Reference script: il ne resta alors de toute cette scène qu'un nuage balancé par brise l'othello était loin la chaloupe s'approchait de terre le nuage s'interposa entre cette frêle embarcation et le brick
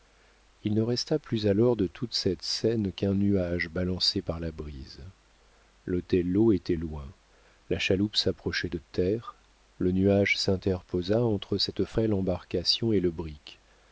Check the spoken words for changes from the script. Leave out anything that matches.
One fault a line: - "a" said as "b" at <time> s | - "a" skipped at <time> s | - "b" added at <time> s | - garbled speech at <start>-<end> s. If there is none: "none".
- "plus" added at 1.2 s
- "la" added at 4.4 s